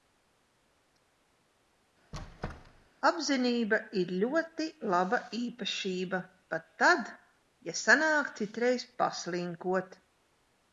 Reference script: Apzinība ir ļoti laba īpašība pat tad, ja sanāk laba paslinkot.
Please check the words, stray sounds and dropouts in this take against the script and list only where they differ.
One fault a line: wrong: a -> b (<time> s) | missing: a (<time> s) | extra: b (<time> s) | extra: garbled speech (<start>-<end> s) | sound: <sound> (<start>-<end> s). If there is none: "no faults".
sound: squeak (2.1-2.9 s)
wrong: laba -> citreiz (8.4 s)